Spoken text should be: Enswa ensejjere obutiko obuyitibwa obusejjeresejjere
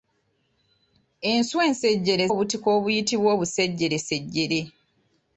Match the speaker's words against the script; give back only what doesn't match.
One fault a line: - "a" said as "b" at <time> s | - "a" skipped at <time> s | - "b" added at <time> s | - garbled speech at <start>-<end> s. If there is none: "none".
none